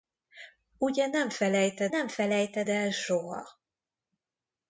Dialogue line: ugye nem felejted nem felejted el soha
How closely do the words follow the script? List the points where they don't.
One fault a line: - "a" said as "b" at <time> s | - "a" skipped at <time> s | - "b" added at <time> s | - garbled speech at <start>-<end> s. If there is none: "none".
none